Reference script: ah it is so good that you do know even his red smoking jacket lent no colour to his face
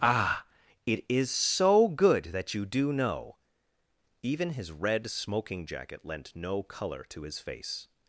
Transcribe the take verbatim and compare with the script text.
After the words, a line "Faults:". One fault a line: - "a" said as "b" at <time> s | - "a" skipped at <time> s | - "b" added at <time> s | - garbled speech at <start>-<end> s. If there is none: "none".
ah it is so good that you do know even his red smoking jacket lent no colour to his face
Faults:
none